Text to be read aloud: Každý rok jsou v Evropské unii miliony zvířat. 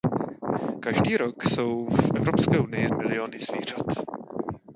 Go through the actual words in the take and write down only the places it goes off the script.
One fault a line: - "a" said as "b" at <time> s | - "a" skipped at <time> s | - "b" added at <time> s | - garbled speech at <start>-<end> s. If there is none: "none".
none